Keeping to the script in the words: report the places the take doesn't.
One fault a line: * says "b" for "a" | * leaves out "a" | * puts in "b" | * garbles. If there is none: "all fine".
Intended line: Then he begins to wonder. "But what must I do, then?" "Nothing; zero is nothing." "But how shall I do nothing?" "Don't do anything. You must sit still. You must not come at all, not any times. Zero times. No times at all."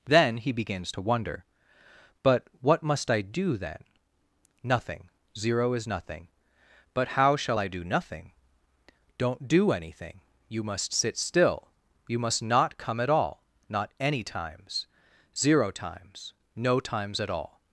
all fine